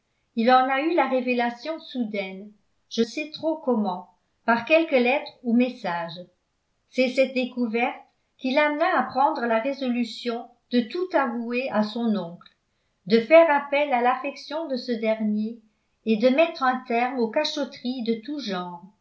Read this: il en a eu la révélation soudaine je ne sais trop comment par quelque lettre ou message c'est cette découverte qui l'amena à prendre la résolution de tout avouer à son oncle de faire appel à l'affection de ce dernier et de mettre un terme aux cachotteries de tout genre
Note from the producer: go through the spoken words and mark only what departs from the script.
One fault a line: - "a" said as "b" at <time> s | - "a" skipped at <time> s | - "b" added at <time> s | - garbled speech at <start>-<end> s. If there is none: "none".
- "ne" skipped at 3.0 s